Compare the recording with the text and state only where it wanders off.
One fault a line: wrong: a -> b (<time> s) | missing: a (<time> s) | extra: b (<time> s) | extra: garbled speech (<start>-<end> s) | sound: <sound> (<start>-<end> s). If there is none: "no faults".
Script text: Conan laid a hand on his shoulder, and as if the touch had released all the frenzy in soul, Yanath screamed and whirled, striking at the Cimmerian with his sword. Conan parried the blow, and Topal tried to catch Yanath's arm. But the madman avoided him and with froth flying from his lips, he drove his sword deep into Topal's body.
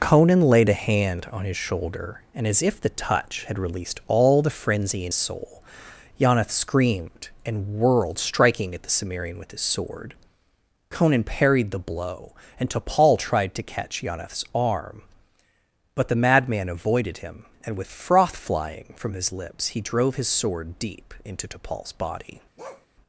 sound: bark (22.6-22.9 s)